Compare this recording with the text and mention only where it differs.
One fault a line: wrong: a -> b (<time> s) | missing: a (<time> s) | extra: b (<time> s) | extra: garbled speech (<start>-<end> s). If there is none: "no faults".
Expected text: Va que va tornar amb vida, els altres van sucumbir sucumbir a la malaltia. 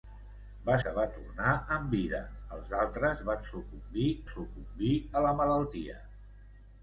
no faults